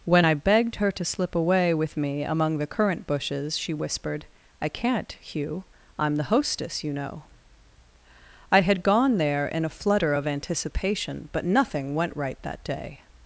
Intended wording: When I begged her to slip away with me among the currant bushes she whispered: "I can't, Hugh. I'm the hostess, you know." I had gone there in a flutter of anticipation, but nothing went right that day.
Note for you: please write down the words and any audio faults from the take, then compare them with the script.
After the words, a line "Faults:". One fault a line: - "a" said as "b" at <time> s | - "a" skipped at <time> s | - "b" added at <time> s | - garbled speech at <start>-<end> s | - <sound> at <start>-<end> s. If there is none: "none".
When I begged her to slip away with me among the currant bushes she whispered: "I can't, Hugh. I'm the hostess, you know." I had gone there in a flutter of anticipation, but nothing went right that day.
Faults:
none